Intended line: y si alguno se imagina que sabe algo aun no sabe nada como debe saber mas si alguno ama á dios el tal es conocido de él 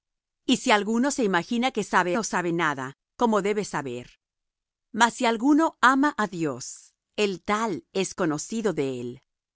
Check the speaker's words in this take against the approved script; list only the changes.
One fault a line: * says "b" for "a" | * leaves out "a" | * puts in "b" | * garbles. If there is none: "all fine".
* leaves out "algo aun"